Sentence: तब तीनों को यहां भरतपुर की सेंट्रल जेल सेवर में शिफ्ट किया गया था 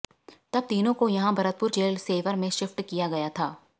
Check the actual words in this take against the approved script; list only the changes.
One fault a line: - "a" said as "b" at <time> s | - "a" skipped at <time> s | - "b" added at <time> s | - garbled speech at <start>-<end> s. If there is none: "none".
- "की सेंट्रल" skipped at 1.7 s